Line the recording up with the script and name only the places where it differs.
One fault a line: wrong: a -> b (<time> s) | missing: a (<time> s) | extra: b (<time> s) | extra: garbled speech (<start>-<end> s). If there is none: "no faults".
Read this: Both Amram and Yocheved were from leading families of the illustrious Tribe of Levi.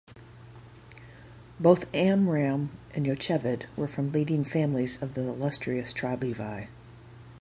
missing: of (6.2 s)